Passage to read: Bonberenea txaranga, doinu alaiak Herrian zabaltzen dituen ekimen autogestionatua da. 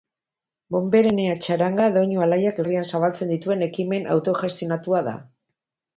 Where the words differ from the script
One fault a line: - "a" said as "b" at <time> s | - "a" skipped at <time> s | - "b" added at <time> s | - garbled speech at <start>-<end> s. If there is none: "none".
none